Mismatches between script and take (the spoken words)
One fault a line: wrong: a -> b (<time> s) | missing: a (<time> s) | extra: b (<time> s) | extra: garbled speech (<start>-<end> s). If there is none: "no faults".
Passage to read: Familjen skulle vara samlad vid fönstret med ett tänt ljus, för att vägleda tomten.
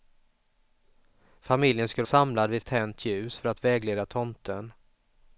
missing: vara (2.0 s)
missing: fönstret med (2.6 s)